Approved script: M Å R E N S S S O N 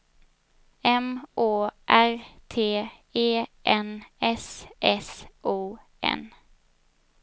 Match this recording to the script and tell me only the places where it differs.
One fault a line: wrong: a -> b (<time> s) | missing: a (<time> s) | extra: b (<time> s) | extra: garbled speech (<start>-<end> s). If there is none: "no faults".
extra: T (2.5 s)
missing: S (5.2 s)